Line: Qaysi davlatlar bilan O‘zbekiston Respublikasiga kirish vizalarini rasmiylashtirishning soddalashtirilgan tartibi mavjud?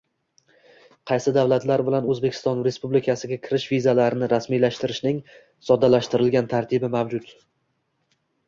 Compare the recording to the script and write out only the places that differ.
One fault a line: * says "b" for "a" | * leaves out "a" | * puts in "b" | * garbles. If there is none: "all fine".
all fine